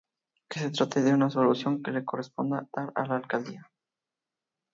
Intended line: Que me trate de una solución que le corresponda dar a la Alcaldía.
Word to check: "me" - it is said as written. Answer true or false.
false